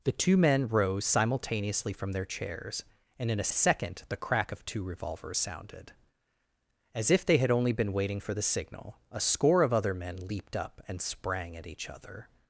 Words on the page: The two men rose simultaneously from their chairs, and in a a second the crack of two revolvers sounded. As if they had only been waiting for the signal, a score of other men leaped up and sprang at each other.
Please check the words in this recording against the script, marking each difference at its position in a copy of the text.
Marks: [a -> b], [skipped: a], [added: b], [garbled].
The two men rose simultaneously from their chairs, and in a a second the crack of two revolvers sounded. As if they had only been waiting for the signal, a score of other men leaped up and sprang at each other.